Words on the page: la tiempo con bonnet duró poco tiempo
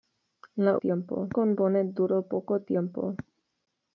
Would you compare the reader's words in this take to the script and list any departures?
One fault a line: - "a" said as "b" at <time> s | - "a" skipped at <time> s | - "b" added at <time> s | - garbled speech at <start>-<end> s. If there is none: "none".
none